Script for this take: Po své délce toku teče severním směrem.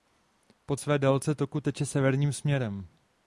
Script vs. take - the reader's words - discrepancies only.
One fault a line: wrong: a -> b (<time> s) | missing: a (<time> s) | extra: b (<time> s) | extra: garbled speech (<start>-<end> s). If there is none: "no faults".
no faults